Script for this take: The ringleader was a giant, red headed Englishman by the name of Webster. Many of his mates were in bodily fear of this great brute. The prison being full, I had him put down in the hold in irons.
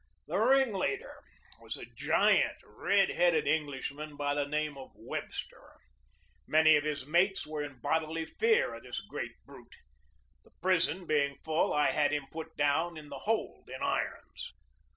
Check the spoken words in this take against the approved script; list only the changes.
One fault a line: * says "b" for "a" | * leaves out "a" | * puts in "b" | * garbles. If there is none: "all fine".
all fine